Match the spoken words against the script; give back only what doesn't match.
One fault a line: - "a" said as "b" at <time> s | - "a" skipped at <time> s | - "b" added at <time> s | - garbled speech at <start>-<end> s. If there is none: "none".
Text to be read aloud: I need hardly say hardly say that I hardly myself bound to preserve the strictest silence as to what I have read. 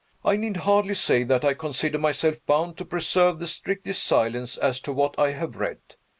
- "hardly say" skipped at 1.2 s
- "hardly" said as "consider" at 1.5 s